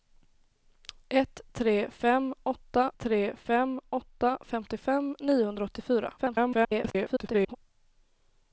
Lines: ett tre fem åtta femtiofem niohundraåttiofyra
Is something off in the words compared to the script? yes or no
yes